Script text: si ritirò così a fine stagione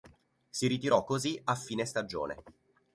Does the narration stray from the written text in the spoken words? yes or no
no